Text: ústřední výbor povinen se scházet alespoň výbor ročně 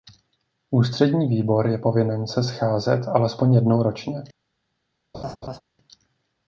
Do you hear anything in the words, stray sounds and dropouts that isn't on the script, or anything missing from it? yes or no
yes